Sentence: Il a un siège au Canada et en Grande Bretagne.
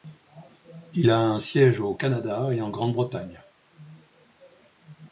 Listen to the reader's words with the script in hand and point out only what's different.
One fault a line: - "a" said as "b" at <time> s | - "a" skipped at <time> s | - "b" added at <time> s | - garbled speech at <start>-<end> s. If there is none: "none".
none